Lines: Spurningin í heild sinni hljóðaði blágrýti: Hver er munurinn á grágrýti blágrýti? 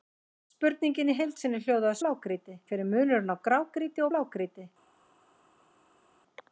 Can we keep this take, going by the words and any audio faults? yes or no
yes